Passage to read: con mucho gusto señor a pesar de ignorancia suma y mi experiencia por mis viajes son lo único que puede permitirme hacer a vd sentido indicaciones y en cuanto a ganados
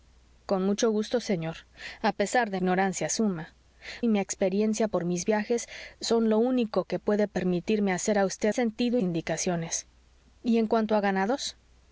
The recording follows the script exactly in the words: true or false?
true